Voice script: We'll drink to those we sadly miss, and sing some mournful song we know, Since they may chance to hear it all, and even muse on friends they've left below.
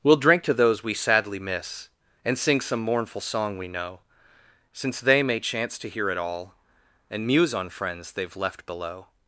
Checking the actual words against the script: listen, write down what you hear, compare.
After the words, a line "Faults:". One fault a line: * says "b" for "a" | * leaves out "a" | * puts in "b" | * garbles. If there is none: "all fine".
We'll drink to those we sadly miss, and sing some mournful song we know, Since they may chance to hear it all, and muse on friends they've left below.
Faults:
* leaves out "even"